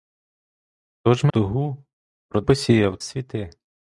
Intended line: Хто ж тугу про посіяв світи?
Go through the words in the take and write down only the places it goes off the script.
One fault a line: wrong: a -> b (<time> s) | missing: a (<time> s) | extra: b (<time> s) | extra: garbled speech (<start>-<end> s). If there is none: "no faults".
no faults